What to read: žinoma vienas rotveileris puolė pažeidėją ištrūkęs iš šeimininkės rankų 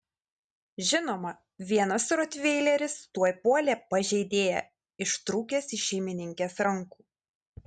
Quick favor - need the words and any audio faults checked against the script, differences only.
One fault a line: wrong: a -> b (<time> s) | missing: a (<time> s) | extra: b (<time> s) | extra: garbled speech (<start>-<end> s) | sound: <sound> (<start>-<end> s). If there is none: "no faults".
extra: tuoj (3.2 s)